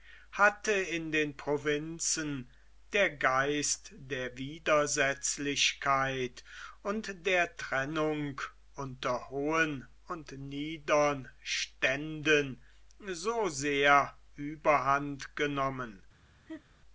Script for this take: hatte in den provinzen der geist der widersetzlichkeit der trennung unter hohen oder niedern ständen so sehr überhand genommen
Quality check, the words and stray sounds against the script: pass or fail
fail